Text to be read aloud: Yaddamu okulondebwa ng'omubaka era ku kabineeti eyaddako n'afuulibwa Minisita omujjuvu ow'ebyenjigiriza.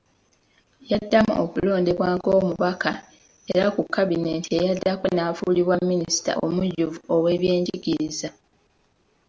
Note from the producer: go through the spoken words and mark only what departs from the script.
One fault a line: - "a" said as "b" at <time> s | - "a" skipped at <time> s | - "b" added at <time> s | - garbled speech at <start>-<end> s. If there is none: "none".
none